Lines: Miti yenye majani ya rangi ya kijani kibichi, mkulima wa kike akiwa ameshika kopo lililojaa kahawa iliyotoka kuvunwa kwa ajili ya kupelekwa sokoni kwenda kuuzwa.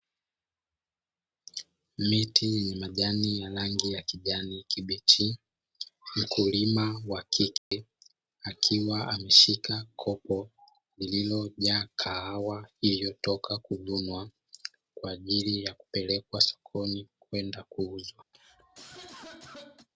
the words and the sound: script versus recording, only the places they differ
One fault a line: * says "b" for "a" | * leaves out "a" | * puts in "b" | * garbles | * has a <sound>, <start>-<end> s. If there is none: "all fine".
* has a dropout, 7.6-7.7 s
* has a cough, 18.3-19.9 s